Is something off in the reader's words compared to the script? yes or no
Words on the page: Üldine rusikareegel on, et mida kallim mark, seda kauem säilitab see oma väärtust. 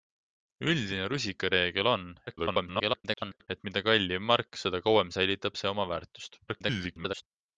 yes